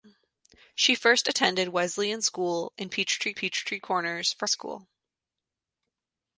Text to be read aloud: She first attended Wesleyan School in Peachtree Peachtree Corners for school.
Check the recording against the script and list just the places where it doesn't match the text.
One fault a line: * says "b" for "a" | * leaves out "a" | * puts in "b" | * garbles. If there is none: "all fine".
all fine